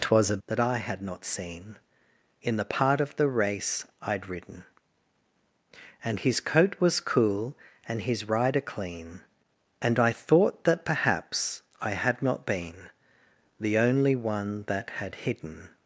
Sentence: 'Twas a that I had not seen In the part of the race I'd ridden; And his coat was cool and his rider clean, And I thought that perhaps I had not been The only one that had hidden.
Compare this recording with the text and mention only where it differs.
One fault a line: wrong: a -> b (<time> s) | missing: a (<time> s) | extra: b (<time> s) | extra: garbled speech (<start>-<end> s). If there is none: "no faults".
no faults